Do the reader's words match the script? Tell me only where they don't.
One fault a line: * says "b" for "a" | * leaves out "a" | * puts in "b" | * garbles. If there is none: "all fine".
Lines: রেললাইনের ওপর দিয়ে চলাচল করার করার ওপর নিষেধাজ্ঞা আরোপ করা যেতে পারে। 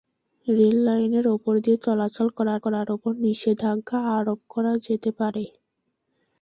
all fine